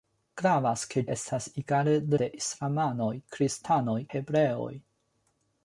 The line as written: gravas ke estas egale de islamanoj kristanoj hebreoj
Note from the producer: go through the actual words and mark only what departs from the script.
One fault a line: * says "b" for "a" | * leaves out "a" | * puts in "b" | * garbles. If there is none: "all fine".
all fine